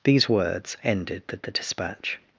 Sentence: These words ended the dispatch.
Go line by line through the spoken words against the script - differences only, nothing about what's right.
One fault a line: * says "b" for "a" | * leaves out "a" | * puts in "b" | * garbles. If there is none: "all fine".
* puts in "the"